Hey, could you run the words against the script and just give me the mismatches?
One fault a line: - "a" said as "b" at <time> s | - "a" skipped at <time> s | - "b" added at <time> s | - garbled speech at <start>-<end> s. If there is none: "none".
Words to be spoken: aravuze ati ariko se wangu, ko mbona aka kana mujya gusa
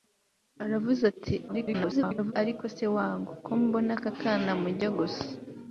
- garbled speech at 1.5-2.3 s